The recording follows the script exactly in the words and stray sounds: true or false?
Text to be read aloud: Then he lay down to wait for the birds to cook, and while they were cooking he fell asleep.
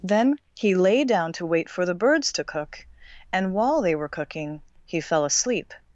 true